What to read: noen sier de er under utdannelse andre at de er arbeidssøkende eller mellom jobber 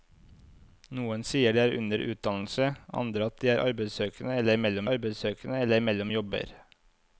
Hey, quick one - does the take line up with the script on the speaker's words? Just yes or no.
no